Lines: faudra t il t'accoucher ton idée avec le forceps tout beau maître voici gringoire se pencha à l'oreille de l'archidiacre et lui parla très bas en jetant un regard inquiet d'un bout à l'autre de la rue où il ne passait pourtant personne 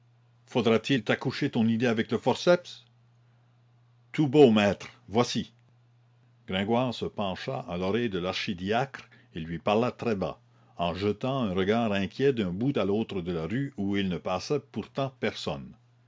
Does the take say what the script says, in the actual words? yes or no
yes